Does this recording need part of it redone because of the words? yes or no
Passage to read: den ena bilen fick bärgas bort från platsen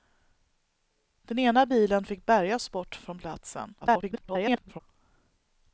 yes